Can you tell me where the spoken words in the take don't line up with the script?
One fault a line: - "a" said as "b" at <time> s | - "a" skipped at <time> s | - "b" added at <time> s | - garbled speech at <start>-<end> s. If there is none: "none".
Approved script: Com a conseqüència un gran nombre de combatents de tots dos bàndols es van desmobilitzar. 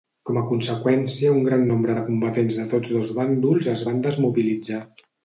none